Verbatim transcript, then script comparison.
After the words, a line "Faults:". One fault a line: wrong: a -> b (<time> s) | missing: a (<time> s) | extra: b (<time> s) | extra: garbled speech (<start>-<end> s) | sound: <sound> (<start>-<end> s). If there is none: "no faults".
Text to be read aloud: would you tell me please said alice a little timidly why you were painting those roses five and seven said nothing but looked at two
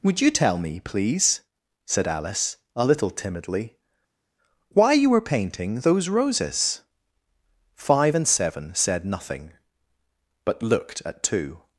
would you tell me please said alice a little timidly why you were painting those roses five and seven said nothing but looked at two
Faults:
no faults